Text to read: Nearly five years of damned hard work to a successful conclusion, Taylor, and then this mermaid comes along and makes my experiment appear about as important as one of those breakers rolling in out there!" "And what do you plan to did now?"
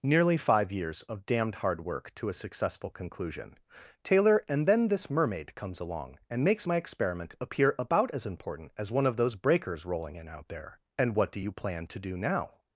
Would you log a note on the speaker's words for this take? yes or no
yes